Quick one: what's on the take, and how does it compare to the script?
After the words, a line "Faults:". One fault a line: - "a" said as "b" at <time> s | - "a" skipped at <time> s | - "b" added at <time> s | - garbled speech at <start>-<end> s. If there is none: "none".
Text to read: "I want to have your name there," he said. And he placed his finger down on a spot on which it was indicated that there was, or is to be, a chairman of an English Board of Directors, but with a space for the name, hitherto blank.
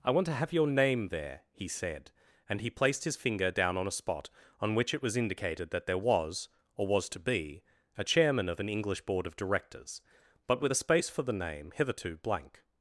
"I want to have your name there," he said. And he placed his finger down on a spot on which it was indicated that there was, or was to be, a chairman of an English Board of Directors, but with a space for the name, hitherto blank.
Faults:
- "is" said as "was" at 6.9 s